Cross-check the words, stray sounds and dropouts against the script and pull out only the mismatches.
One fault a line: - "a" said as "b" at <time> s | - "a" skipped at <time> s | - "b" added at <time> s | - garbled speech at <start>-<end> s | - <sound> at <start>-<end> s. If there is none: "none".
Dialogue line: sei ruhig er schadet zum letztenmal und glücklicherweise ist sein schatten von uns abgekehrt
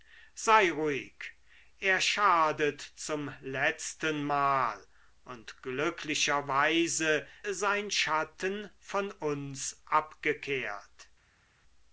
- "ist" skipped at 7.3 s